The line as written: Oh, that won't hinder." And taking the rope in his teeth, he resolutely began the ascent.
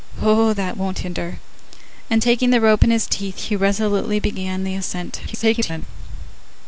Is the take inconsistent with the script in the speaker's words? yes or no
yes